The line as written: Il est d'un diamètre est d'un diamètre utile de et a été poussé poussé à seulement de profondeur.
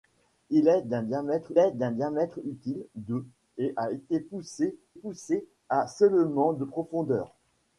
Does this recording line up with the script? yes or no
yes